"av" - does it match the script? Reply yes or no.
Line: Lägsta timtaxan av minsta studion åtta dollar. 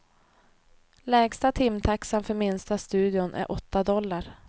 no